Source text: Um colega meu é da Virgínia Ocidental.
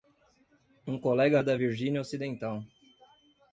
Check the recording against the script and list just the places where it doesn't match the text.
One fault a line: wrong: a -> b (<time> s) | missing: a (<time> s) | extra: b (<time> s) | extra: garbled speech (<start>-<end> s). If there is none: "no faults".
missing: meu (1.4 s)